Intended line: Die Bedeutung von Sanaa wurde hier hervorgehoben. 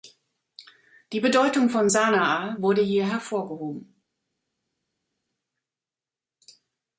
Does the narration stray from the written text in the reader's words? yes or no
no